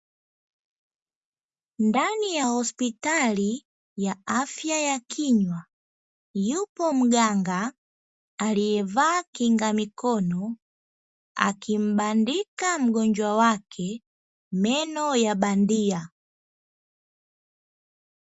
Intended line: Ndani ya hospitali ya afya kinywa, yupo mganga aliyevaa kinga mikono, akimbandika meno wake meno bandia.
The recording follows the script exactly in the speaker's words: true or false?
false